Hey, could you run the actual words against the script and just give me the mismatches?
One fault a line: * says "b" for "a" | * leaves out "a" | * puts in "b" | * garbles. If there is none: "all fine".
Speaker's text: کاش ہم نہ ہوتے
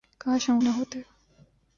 all fine